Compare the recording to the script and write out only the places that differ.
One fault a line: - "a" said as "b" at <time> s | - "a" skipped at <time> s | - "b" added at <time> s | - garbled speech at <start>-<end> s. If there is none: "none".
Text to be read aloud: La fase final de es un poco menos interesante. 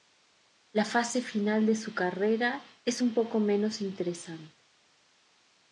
- "su carrera" added at 1.8 s